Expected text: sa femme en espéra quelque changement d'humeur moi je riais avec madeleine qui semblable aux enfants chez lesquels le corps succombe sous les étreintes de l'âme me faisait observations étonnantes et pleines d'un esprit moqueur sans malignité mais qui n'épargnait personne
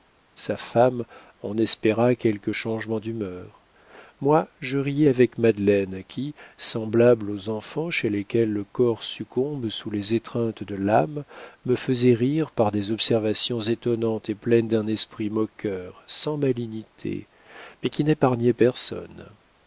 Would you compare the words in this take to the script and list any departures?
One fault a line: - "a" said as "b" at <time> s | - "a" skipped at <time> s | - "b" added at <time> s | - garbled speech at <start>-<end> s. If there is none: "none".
- "rire par des" added at 12.1 s